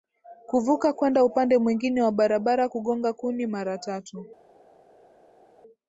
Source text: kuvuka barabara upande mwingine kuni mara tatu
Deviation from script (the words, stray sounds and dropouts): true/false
true